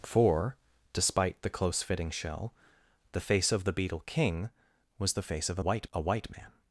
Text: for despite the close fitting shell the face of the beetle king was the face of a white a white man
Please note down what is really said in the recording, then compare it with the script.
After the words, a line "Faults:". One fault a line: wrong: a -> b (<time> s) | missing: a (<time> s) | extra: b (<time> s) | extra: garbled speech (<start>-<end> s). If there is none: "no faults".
for despite the close fitting shell the face of the beetle king was the face of a white a white man
Faults:
no faults